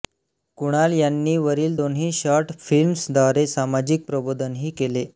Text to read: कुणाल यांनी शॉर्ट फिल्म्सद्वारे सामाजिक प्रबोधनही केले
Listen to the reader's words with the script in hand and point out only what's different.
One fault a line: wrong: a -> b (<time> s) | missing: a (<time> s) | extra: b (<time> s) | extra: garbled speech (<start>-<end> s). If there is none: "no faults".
extra: वरील दोन्ही (1.4 s)